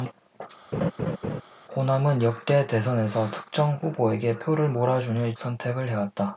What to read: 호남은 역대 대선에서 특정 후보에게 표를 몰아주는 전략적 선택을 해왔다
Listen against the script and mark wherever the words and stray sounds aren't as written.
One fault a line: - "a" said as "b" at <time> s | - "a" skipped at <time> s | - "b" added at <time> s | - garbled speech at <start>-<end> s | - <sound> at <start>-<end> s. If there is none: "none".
- laugh at 0.7-1.4 s
- "전략적" skipped at 5.3 s